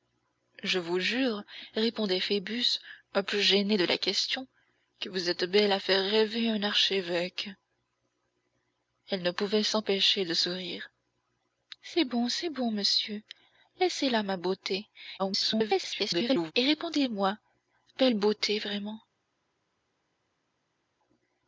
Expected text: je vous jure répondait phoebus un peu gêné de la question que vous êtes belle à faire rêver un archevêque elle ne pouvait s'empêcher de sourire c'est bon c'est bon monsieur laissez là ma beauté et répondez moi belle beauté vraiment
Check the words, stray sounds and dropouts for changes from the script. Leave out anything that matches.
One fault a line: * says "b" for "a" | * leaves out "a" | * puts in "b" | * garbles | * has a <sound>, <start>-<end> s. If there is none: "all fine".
* garbles